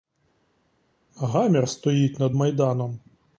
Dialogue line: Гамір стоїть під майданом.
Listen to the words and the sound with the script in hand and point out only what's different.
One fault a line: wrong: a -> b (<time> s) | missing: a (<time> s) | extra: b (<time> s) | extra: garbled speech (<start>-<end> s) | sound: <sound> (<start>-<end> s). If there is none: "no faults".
wrong: під -> над (2.2 s)